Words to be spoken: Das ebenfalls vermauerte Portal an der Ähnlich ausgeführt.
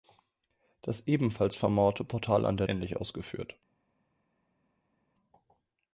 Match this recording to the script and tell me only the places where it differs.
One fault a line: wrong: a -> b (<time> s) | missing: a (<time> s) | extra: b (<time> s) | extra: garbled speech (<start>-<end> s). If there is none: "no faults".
no faults